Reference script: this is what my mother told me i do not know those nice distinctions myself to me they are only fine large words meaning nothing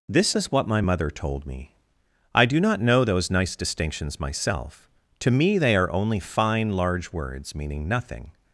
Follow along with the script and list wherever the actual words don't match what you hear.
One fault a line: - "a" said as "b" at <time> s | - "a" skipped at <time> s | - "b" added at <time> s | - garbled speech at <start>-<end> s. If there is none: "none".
none